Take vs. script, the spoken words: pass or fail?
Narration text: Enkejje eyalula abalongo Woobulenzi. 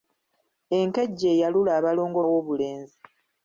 pass